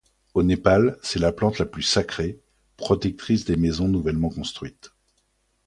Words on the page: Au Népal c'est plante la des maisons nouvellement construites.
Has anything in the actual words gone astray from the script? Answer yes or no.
yes